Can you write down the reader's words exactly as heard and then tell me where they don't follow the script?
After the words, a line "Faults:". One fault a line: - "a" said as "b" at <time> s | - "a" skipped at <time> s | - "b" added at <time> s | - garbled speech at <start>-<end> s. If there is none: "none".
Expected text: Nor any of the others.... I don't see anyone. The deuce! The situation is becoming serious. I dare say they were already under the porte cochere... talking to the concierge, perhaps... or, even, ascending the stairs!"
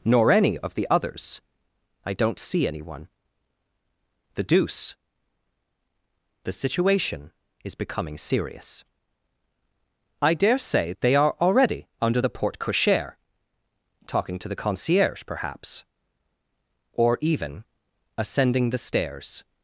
Nor any of the others.... I don't see anyone. The deuce! The situation is becoming serious. I dare say they are already under the porte cochere... talking to the concierge, perhaps... or, even, ascending the stairs!"
Faults:
- "were" said as "are" at 11.2 s